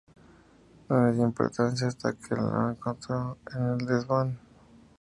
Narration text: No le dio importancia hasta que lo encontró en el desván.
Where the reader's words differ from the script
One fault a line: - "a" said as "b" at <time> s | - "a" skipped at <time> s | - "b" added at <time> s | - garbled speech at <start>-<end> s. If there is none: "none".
none